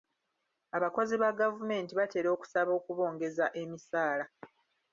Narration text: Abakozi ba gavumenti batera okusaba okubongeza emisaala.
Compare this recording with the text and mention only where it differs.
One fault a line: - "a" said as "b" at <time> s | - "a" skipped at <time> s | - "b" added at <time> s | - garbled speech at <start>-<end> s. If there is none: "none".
none